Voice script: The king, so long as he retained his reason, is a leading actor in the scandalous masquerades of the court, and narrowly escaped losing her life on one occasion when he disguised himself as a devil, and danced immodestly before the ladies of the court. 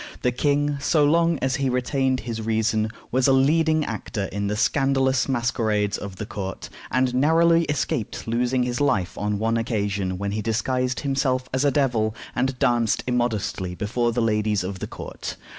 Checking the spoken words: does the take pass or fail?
fail